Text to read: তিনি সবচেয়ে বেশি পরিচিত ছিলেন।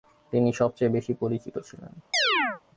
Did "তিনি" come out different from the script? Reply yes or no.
no